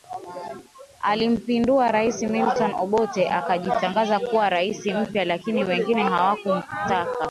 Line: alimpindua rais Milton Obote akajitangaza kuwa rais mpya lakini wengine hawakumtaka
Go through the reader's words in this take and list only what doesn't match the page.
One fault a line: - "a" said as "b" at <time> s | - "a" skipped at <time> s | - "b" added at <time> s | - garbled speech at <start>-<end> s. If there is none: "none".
none